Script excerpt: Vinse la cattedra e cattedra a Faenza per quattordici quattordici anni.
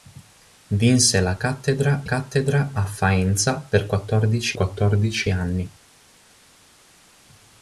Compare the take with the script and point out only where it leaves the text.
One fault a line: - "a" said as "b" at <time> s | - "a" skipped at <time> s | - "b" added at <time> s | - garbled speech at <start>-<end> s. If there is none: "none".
none